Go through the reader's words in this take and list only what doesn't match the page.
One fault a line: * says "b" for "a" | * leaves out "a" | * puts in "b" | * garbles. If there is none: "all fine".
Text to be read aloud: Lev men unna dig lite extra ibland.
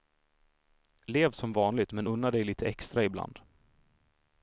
* puts in "som vanligt"